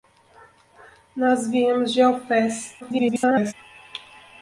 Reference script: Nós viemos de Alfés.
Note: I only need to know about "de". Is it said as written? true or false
true